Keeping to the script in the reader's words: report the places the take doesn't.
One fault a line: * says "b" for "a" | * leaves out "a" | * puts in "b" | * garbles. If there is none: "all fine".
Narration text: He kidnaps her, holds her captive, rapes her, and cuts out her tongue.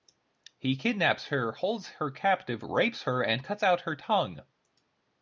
all fine